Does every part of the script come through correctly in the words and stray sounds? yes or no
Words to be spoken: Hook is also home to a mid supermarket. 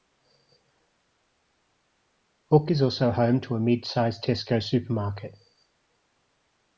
no